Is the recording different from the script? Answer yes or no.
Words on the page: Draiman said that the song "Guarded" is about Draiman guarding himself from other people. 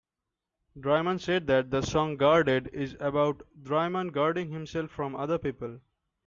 no